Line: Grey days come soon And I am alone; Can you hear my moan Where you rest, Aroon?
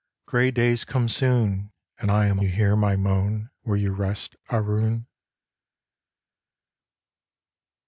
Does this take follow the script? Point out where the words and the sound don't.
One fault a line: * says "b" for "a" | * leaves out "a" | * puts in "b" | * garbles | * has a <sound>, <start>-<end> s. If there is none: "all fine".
* leaves out "alone Can"